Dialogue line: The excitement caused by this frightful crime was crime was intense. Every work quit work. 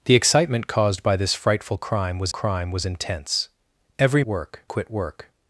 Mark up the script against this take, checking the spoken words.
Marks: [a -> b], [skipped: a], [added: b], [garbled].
The excitement caused by this frightful crime was crime was intense. Every work quit work.